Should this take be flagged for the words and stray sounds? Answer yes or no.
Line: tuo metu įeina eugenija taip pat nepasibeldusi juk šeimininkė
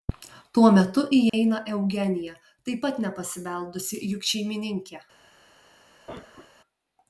yes